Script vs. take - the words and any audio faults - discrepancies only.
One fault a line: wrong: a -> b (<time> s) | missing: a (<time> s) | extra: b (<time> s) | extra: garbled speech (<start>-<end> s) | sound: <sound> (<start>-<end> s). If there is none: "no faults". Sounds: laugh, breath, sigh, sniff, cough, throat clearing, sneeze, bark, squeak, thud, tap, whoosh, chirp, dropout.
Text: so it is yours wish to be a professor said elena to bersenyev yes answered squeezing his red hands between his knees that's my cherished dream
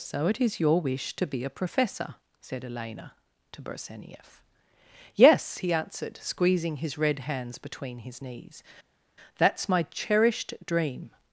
wrong: yours -> your (0.6 s)
extra: he (5.6 s)